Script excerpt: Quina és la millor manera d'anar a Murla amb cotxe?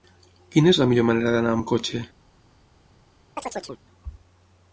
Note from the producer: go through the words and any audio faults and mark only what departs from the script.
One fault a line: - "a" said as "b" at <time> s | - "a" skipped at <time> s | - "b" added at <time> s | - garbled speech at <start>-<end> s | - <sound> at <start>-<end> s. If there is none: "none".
- "Murla" skipped at 1.6 s
- chirp at 3.4-3.8 s